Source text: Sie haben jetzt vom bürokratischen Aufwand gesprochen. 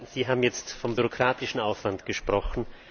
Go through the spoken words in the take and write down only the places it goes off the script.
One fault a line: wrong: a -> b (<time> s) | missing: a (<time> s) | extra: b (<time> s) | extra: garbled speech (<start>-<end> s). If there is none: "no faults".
no faults